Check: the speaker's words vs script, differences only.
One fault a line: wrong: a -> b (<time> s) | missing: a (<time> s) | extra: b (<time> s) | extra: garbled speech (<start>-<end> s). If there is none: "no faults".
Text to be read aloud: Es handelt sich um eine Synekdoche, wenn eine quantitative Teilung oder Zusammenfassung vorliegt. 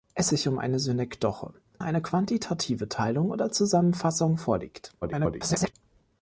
missing: handelt (0.3 s)
missing: wenn (1.5 s)
extra: garbled speech (5.0-5.7 s)